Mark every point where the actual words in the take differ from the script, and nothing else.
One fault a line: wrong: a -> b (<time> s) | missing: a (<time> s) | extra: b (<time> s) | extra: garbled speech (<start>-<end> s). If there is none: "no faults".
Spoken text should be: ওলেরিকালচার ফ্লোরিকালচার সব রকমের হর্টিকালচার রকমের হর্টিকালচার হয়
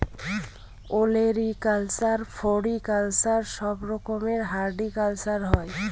missing: রকমের হর্টিকালচার (5.4 s)